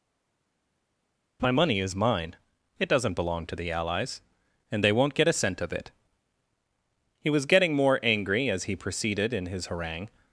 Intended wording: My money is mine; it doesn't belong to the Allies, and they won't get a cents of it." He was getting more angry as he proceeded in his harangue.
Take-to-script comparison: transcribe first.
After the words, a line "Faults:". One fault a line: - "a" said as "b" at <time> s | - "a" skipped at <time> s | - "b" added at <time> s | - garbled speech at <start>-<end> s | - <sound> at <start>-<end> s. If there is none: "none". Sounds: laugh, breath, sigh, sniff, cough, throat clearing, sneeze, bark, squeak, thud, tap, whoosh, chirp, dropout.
My money is mine; it doesn't belong to the Allies, and they won't get a cent of it." He was getting more angry as he proceeded in his harangue.
Faults:
- "cents" said as "cent" at 5.3 s